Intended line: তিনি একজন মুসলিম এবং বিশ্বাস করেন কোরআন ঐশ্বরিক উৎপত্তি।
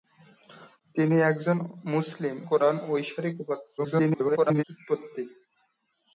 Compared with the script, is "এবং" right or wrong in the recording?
wrong